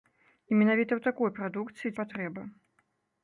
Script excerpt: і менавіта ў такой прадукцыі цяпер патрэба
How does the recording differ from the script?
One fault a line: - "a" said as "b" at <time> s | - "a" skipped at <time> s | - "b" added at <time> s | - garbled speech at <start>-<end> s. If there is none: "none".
- "цяпер" skipped at 1.9 s